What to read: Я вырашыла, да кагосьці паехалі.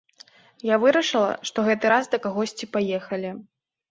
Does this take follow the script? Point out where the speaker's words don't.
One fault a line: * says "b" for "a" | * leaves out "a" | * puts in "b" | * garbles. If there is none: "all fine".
* puts in "што гэты раз"